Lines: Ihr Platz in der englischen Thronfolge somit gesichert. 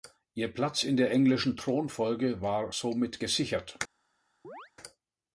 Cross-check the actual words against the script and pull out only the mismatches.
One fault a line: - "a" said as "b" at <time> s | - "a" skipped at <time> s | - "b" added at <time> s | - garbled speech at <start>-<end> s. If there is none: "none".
- "war" added at 2.4 s